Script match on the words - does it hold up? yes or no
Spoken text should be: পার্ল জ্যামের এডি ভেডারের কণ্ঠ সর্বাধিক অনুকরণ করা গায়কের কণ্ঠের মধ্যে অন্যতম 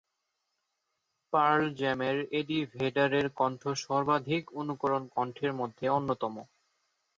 no